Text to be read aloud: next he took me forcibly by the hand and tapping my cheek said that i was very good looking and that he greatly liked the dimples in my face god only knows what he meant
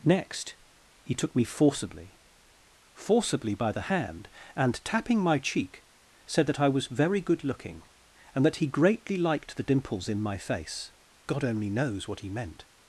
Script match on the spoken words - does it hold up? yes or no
no